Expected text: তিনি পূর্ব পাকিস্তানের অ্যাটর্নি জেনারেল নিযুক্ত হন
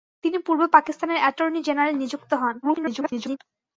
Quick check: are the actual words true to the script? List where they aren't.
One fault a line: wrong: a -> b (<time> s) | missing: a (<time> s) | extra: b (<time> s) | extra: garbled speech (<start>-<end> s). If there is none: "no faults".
extra: garbled speech (2.6-3.4 s)